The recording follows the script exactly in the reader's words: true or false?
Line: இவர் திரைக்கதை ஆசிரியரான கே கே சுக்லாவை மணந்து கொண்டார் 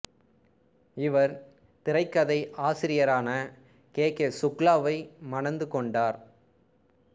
true